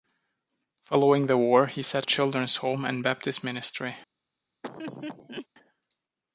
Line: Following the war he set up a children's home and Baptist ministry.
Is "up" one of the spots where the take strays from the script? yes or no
yes